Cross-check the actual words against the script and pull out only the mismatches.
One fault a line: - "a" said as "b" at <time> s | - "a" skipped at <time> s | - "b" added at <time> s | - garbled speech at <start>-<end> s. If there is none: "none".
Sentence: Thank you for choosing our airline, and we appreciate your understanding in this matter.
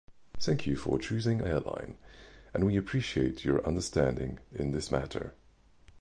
- "our" skipped at 1.4 s